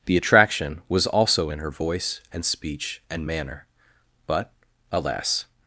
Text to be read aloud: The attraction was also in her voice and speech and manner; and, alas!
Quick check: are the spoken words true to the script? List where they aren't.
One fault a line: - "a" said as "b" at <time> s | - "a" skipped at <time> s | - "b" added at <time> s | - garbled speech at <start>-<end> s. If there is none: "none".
- "and" said as "but" at 4.3 s